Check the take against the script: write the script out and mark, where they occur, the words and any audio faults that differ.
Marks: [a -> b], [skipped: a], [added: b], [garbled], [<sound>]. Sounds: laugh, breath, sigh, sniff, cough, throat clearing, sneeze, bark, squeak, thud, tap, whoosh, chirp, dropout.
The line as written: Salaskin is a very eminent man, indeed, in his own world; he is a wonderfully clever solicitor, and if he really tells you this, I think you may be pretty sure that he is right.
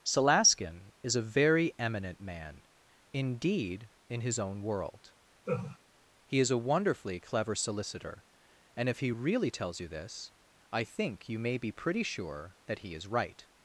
Salaskin is a very eminent man, indeed, in his own world; [laugh] he is a wonderfully clever solicitor, and if he really tells you this, I think you may be pretty sure that he is right.